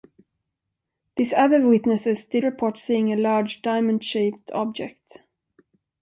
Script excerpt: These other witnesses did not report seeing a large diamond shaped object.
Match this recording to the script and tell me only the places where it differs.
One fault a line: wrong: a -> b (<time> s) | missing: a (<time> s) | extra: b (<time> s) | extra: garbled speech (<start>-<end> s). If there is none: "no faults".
missing: not (2.4 s)